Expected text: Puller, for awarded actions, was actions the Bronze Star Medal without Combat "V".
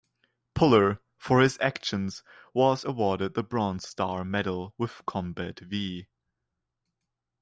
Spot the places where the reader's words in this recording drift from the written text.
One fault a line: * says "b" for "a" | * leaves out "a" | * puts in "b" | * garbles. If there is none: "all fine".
* says "his" for "awarded"
* says "awarded" for "actions"
* says "with" for "without"